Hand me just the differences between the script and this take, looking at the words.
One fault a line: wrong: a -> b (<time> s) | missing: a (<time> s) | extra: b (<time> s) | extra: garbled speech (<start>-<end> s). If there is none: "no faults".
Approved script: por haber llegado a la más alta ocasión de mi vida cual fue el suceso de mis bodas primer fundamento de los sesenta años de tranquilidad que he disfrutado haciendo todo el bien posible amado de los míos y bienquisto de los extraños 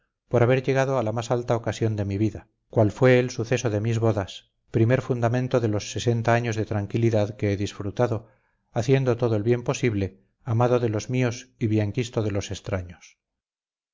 no faults